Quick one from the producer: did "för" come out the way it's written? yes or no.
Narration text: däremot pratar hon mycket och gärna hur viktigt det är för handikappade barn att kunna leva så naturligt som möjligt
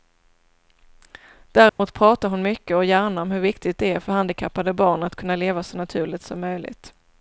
yes